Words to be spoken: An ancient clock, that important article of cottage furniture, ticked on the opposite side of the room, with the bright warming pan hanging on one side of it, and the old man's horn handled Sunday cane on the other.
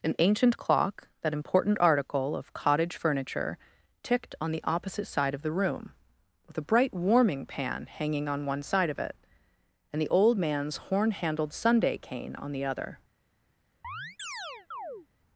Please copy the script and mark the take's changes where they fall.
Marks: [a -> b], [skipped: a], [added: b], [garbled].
An ancient clock, that important article of cottage furniture, ticked on the opposite side of the room, with [the -> a] bright warming pan hanging on one side of it, and the old man's horn handled Sunday cane on the other.